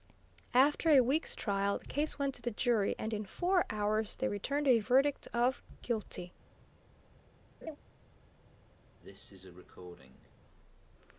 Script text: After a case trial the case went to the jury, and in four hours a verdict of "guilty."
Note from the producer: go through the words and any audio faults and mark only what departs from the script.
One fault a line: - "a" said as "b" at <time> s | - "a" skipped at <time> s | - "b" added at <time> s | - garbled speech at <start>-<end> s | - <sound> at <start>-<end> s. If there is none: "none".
- "case" said as "week's" at 1.0 s
- "they returned" added at 4.2 s
- laugh at 7.6-7.8 s
- cough at 9.0-10.3 s